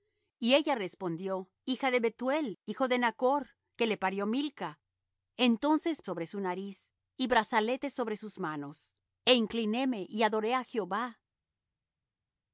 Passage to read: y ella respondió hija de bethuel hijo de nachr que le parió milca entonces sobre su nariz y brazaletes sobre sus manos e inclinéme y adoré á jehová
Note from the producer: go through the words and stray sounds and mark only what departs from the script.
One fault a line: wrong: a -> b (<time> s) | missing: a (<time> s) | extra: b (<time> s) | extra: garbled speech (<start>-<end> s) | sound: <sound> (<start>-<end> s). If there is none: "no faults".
no faults